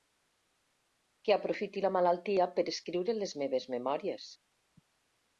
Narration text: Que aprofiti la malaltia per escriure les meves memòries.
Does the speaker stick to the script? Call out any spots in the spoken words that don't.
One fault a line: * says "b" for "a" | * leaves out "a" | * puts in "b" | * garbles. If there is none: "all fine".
all fine